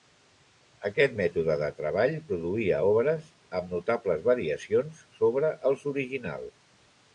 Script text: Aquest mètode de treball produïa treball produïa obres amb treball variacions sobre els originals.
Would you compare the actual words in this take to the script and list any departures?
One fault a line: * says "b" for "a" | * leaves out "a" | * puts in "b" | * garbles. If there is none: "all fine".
* leaves out "treball produïa"
* says "notables" for "treball"